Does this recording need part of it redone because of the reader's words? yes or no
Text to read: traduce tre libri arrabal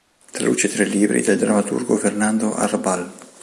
yes